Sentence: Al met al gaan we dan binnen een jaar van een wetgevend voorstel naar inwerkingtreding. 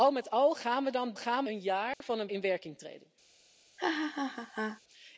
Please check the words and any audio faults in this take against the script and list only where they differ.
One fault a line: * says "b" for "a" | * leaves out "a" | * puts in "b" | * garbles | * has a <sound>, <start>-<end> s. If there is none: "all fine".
* says "gaan" for "binnen"
* has a dropout, 1.9-2.0 s
* leaves out "wetgevend voorstel naar"
* has a laugh, 3.8-4.8 s